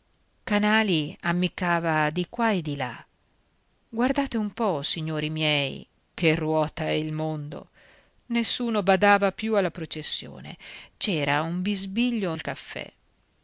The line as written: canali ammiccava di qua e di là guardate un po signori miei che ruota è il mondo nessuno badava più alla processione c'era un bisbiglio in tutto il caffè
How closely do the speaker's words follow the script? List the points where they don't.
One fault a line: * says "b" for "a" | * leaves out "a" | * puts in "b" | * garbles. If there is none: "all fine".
* leaves out "in tutto"